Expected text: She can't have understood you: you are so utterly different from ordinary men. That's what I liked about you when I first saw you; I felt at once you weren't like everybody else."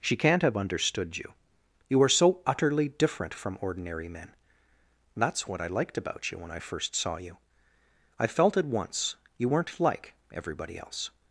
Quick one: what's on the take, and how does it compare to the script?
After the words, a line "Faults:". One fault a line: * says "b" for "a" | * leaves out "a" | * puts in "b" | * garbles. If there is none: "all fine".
She can't have understood you: you are so utterly different from ordinary men. That's what I liked about you when I first saw you; I felt at once you weren't like everybody else."
Faults:
all fine